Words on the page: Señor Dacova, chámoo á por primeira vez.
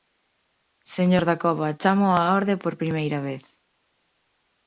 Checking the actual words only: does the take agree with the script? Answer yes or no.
no